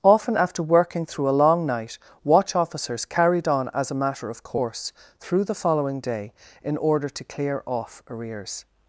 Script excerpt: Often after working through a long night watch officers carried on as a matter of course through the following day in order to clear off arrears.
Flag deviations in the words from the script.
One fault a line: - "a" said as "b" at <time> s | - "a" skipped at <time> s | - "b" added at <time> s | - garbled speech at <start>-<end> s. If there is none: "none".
none